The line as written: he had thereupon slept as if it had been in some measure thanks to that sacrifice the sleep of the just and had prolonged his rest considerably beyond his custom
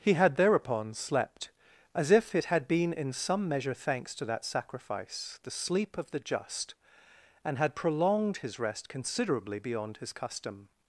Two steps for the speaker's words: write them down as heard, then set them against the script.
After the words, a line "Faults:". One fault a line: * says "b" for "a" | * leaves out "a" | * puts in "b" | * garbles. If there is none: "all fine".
he had thereupon slept as if it had been in some measure thanks to that sacrifice the sleep of the just and had prolonged his rest considerably beyond his custom
Faults:
all fine